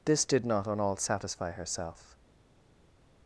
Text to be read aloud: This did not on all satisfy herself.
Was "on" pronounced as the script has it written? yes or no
yes